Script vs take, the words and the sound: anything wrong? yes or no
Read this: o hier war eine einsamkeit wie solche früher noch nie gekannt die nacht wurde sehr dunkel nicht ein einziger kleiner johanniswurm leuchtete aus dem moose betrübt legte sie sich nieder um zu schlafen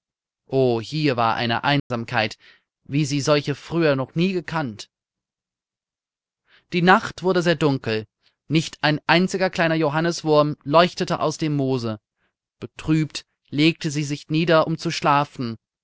yes